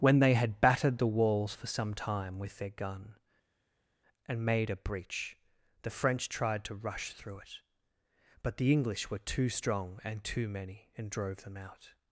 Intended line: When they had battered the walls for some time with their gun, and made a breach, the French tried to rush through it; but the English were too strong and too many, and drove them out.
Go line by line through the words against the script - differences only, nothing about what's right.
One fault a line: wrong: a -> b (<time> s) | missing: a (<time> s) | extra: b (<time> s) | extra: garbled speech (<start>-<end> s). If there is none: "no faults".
no faults